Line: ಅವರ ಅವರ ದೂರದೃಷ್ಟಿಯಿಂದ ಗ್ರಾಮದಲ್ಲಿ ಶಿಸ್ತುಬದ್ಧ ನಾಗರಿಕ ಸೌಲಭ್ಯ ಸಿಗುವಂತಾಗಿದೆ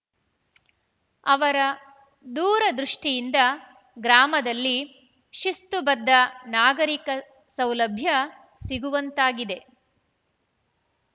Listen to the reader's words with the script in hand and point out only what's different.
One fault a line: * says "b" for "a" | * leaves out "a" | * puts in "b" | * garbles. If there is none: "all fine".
* leaves out "ಅವರ"